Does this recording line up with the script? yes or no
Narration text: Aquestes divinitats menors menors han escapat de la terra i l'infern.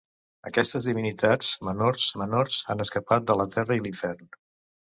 yes